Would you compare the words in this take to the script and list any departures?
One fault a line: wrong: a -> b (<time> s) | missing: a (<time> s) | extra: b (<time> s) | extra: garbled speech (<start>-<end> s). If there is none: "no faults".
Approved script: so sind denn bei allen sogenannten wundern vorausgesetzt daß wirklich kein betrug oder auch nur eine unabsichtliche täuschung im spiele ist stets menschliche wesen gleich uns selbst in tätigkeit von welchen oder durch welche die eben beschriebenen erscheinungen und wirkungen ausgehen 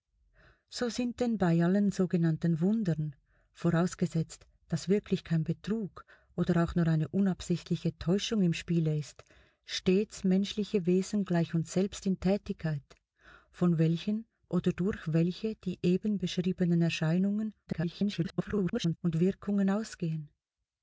extra: garbled speech (17.7-19.0 s)